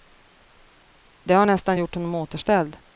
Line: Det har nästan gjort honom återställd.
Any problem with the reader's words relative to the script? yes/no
no